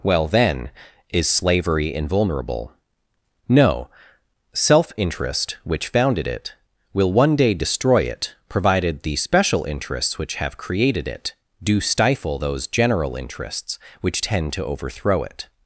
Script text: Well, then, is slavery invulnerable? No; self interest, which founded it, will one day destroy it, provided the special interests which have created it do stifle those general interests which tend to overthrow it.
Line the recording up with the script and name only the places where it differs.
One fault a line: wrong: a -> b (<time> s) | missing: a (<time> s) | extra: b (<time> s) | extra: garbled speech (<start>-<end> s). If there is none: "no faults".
no faults